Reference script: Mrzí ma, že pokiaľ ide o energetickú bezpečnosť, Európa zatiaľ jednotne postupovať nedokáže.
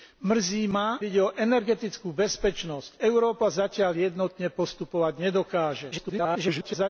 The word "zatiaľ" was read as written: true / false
true